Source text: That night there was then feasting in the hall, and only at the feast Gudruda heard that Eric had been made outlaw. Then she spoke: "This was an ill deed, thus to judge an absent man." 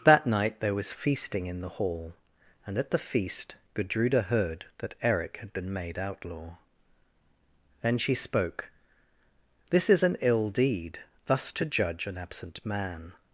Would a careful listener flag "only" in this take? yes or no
yes